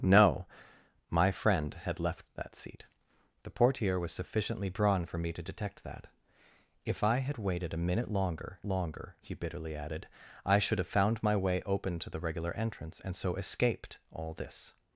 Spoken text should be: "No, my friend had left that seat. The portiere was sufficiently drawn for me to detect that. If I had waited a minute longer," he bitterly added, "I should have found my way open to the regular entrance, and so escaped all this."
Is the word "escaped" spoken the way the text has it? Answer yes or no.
yes